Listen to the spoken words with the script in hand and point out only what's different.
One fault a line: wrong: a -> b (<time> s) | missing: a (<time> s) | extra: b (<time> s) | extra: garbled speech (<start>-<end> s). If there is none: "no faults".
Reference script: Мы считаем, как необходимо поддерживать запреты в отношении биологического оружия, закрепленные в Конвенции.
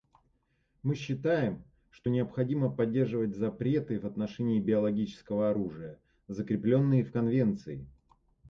wrong: как -> что (1.9 s)